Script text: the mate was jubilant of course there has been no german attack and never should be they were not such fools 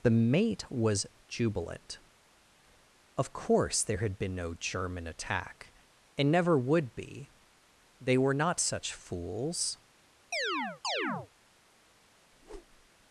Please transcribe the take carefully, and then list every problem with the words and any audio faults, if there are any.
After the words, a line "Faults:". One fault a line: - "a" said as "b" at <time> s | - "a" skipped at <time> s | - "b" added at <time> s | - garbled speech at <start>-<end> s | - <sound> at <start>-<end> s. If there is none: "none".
the mate was jubilant of course there had been no german attack and never would be they were not such fools
Faults:
- "has" said as "had" at 4.0 s
- "should" said as "would" at 6.6 s
- chirp at 10.3-11.3 s
- whoosh at 12.3-12.9 s